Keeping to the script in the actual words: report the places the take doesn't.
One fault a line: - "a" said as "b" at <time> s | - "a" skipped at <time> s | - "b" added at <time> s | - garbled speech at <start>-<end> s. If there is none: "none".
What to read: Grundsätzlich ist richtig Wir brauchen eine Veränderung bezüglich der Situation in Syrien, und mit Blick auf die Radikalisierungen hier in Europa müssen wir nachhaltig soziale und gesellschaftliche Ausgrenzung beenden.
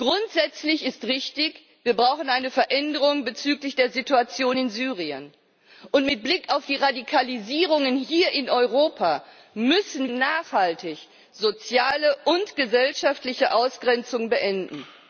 - "wir" skipped at 10.1 s